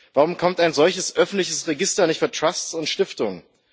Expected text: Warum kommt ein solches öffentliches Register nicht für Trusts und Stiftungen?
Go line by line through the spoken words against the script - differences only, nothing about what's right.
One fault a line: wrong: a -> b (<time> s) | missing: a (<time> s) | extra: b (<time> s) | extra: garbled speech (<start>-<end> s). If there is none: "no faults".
no faults